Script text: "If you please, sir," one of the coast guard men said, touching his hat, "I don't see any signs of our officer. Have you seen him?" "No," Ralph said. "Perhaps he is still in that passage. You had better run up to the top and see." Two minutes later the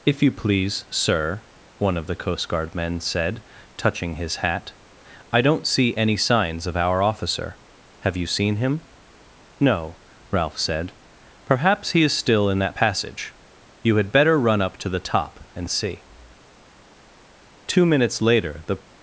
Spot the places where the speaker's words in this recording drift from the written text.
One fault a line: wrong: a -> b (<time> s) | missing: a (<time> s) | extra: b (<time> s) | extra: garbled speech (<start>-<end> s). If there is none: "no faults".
no faults